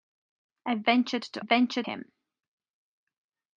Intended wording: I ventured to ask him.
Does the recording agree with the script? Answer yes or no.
no